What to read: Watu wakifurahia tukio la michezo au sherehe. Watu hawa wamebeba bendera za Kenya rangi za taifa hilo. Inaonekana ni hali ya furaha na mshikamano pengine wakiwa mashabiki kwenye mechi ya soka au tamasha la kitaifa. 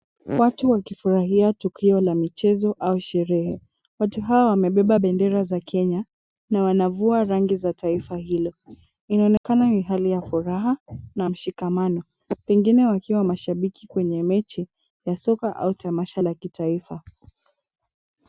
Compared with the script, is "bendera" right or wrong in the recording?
right